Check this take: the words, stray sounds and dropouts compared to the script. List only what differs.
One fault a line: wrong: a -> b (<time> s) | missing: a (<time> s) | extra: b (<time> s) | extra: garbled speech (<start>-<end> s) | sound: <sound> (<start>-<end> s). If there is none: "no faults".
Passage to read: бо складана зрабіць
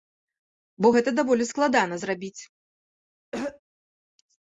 extra: гэта даволі (0.9 s)
sound: throat clearing (3.3-3.6 s)